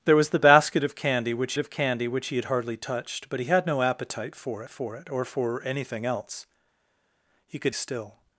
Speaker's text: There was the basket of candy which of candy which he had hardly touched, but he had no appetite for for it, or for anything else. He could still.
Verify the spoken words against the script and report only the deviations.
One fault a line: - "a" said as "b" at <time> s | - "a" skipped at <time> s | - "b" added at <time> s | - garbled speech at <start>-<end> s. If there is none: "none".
none